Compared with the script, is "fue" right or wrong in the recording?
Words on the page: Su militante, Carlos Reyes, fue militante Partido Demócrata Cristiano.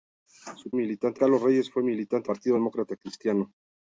right